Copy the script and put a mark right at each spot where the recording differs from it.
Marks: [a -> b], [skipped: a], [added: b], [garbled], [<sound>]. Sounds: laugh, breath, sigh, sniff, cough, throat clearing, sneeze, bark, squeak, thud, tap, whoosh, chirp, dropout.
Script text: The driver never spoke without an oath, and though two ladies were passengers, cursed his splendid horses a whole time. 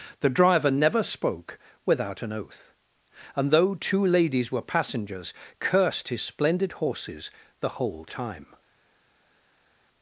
The driver never spoke without an oath, and though two ladies were passengers, cursed his splendid horses [a -> the] whole time.